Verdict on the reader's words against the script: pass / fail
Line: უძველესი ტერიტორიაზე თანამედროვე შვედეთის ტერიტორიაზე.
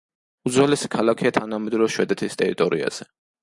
fail